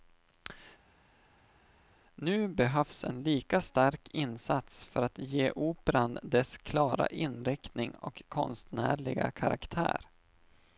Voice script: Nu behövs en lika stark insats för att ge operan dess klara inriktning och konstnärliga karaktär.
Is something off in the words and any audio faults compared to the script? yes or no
no